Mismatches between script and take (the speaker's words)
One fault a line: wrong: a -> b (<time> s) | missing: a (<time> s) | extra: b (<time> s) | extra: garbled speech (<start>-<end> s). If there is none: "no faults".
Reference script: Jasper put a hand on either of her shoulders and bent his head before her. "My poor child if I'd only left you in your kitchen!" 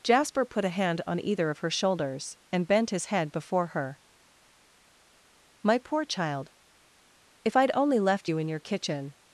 no faults